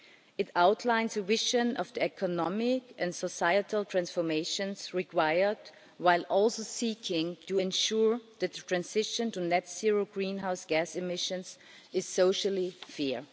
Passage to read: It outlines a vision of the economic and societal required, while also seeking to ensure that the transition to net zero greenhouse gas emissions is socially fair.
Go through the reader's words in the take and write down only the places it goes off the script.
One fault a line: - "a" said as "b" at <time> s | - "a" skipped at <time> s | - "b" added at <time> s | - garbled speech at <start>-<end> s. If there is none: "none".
- "transformations" added at 3.9 s